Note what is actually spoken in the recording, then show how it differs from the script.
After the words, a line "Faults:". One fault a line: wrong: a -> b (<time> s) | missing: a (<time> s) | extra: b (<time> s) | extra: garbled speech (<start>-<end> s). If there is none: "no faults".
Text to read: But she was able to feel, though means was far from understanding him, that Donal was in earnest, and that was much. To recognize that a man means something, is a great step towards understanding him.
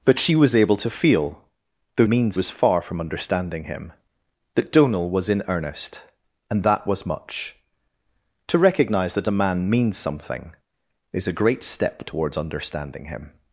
But she was able to feel, though means was far from understanding him, that Donal was in earnest, and that was much. To recognize that a man means something, is a great step towards understanding him.
Faults:
no faults